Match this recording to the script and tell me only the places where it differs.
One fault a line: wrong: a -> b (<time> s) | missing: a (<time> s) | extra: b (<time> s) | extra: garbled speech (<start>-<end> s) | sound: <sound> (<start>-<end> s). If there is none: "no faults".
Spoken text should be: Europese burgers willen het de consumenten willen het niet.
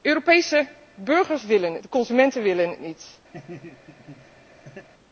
sound: laugh (3.3-4.9 s)